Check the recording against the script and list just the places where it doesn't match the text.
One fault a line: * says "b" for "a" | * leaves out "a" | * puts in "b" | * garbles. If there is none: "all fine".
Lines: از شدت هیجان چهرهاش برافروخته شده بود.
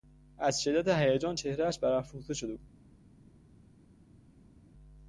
all fine